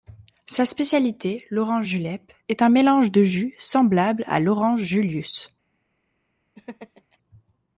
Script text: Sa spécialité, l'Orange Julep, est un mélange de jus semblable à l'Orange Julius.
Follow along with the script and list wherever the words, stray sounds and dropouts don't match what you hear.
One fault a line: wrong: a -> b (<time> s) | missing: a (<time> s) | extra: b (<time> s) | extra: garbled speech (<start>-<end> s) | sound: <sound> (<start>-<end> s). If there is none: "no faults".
sound: laugh (6.6-7.2 s)